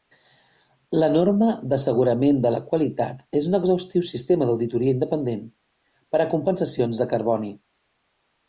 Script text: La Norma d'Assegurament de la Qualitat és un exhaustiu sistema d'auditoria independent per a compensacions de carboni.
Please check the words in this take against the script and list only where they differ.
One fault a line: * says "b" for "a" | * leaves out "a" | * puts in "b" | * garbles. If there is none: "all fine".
all fine